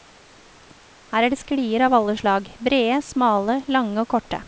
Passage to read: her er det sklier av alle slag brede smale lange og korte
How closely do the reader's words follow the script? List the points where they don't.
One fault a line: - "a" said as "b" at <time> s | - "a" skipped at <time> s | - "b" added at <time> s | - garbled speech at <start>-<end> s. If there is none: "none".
none